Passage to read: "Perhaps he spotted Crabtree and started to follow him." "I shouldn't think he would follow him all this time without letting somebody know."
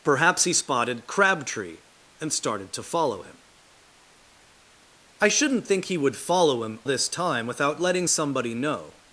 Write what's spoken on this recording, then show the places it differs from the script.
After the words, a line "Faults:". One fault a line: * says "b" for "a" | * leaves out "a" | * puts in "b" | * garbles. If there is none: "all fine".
"Perhaps he spotted Crabtree and started to follow him." "I shouldn't think he would follow him this time without letting somebody know."
Faults:
* leaves out "all"